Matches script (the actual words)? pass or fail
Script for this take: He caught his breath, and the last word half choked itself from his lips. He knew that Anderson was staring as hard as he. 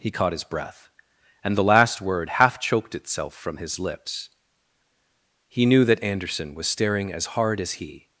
pass